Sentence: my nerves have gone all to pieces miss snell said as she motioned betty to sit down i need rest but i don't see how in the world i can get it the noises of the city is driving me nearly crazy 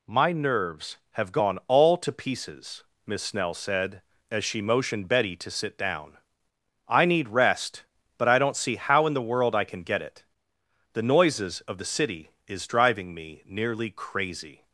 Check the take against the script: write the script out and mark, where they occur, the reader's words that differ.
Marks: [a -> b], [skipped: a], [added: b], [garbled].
my nerves have gone all to pieces miss snell said as she motioned betty to sit down i need rest but i don't see how in the world i can get it the noises of the city is driving me nearly crazy